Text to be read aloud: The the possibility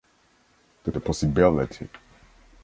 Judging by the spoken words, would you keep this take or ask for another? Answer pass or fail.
pass